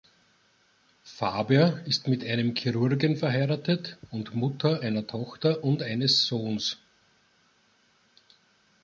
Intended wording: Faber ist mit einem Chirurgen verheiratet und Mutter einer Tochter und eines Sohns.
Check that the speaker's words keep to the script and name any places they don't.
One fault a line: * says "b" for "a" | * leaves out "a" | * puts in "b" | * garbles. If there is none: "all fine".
all fine